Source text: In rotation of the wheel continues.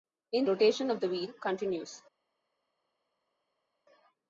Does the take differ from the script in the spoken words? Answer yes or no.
no